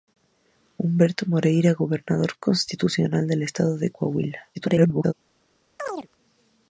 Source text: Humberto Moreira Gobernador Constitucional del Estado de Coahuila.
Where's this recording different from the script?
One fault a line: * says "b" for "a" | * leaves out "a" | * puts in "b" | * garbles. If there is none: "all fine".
* garbles